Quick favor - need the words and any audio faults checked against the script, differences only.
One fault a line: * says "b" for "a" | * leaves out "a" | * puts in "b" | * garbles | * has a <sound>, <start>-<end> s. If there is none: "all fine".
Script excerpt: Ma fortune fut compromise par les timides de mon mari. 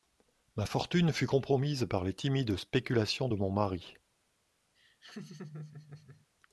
* puts in "spéculations"
* has a laugh, 4.7-6.3 s